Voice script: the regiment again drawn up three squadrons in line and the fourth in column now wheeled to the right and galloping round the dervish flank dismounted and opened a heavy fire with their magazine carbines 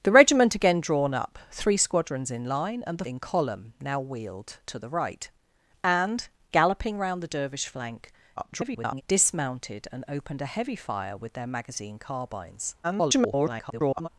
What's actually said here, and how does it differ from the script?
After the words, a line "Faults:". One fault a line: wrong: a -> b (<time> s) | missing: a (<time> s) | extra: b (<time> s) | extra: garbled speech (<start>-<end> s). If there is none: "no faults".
the regiment again drawn up three squadrons in line and the in column now wheeled to the right and galloping round the dervish flank [garbled] dismounted and opened a heavy fire with their magazine carbines [garbled]
Faults:
missing: fourth (3.0 s)
extra: garbled speech (8.4-9.0 s)
extra: garbled speech (12.8-14.1 s)